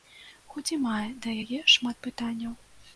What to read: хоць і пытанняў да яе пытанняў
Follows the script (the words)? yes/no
no